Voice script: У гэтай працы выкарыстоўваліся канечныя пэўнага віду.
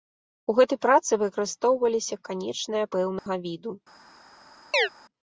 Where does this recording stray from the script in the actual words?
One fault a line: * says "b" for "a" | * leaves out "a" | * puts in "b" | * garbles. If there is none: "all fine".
all fine